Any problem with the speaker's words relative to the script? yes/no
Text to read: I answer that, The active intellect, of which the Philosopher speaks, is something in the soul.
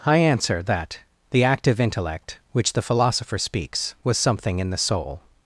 yes